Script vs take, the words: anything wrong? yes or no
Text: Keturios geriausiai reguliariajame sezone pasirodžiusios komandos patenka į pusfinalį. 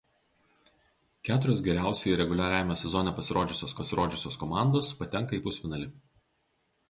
yes